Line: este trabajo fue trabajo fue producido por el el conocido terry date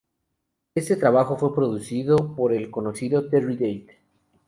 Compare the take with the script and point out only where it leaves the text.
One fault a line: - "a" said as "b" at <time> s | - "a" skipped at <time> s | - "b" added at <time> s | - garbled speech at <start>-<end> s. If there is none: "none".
- "trabajo fue" skipped at 1.5 s
- "el" skipped at 2.7 s